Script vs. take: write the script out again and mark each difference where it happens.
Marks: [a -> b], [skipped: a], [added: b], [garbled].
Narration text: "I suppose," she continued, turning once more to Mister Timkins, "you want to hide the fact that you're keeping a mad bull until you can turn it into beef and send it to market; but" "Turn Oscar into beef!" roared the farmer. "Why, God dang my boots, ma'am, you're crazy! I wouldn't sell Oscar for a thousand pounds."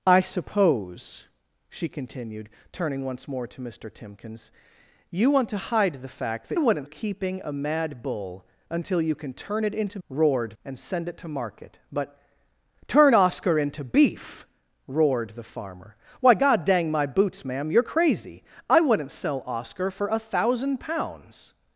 "I suppose," she continued, turning once more to Mister Timkins, "you want to hide the fact that [you're -> wouldn't] keeping a mad bull until you can turn it into [beef -> roared] and send it to market; but" "Turn Oscar into beef!" roared the farmer. "Why, God dang my boots, ma'am, you're crazy! I wouldn't sell Oscar for a thousand pounds."